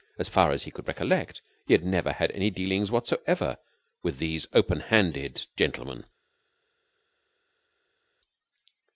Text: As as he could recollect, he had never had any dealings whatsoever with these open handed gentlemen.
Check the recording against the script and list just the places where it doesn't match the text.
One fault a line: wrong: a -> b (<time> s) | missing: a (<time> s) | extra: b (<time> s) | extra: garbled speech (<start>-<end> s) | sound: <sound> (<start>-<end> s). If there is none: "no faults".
extra: far (0.3 s)